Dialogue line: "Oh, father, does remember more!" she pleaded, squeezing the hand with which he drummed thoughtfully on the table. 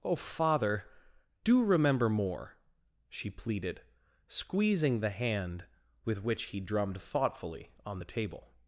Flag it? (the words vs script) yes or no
yes